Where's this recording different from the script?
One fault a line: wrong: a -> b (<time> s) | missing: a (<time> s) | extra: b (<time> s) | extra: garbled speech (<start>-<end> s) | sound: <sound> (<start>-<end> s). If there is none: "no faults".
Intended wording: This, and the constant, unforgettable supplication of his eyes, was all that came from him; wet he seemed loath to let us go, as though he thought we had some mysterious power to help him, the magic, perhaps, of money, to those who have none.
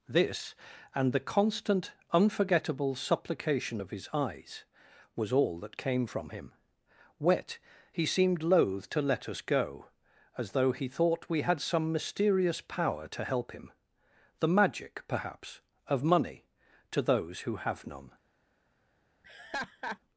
sound: laugh (19.2-20.0 s)